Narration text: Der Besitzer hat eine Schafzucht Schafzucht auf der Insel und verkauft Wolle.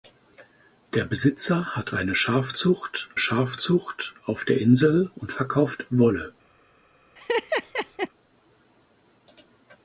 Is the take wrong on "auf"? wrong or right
right